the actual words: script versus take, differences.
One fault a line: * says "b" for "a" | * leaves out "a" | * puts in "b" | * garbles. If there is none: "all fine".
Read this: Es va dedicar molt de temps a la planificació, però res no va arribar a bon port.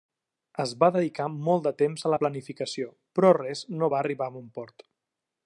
all fine